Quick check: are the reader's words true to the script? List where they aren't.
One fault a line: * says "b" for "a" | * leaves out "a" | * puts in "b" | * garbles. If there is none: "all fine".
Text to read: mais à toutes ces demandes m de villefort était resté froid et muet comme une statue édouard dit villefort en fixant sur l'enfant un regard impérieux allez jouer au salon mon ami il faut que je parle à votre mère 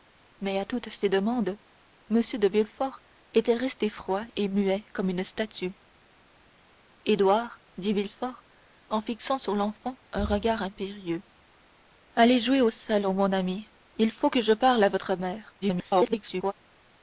* garbles